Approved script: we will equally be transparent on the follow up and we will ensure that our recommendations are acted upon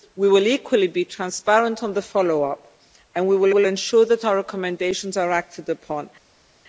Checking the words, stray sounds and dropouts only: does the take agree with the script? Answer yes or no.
no